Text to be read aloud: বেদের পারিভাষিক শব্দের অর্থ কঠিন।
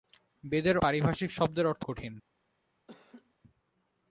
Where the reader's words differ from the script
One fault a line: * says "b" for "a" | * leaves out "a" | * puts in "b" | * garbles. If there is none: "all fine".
all fine